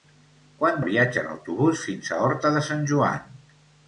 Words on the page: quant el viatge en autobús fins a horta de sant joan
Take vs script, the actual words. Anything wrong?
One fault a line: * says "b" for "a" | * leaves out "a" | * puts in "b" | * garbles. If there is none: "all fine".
all fine